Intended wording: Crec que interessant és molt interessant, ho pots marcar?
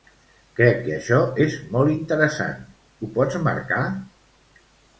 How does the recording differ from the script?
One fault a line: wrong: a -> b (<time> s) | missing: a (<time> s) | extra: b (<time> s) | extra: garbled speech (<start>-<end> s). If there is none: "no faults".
wrong: interessant -> això (0.9 s)